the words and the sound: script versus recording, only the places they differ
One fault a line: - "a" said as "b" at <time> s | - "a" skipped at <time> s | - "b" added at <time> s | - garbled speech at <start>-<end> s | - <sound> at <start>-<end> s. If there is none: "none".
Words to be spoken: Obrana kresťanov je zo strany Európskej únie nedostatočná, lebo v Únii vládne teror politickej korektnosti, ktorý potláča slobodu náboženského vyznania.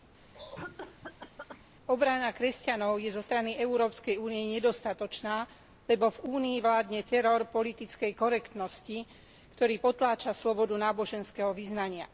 - cough at 0.3-1.6 s